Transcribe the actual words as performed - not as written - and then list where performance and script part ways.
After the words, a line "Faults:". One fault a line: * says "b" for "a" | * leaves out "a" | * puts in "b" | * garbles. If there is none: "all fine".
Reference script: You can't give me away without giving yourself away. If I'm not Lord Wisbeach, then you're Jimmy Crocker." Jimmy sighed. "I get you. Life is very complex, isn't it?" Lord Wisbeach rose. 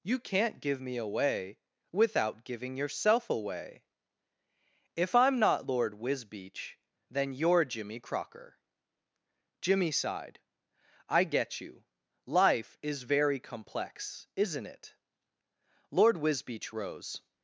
You can't give me away without giving yourself away. If I'm not Lord Wisbeach, then you're Jimmy Crocker." Jimmy sighed. "I get you. Life is very complex, isn't it?" Lord Wisbeach rose.
Faults:
all fine